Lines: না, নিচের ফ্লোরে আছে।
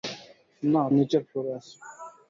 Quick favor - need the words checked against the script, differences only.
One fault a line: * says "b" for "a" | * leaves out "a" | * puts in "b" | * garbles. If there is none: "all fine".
all fine